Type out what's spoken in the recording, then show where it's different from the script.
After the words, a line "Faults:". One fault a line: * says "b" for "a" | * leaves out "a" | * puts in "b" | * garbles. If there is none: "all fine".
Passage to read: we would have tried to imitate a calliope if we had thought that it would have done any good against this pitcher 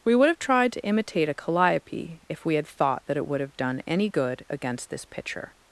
we would have tried to imitate a calliope if we had thought that it would have done any good against this pitcher
Faults:
all fine